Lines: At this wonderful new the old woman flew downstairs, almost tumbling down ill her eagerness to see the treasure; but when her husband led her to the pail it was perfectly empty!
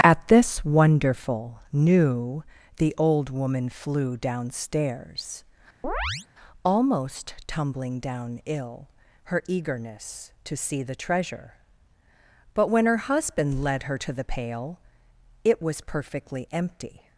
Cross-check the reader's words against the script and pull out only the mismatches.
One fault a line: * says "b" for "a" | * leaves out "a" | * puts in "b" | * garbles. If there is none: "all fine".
all fine